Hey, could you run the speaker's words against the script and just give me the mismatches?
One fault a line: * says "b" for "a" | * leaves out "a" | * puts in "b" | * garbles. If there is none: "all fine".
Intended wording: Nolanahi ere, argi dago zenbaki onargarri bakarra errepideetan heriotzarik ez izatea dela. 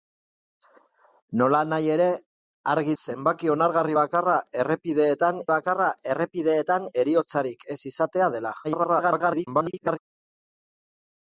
* leaves out "dago"
* puts in "bakarra errepideetan"
* garbles